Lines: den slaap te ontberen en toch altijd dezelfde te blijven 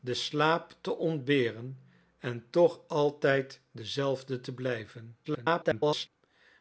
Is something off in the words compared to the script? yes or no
yes